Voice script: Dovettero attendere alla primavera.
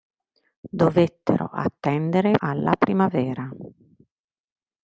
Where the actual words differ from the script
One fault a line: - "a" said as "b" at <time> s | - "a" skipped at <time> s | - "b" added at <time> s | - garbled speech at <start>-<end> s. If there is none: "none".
none